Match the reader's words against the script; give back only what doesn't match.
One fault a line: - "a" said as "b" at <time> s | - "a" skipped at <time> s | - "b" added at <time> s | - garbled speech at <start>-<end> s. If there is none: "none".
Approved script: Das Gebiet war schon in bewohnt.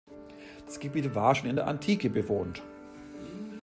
- "der Antike" added at 1.5 s